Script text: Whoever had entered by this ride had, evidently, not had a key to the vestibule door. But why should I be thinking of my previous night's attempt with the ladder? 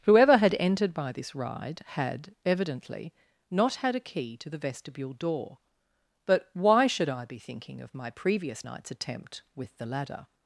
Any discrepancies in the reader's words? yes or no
no